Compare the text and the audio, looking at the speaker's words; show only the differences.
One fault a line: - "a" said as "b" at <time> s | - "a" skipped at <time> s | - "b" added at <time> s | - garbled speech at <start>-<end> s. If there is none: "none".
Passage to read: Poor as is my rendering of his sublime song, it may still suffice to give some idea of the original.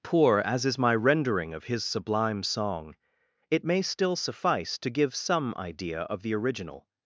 none